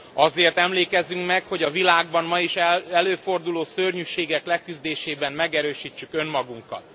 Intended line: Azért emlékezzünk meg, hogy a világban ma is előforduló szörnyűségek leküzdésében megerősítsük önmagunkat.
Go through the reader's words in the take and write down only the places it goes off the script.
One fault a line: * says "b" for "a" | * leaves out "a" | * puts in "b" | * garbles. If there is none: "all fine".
all fine